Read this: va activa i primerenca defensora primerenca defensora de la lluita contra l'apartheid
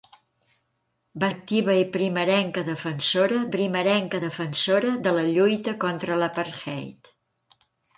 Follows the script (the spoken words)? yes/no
yes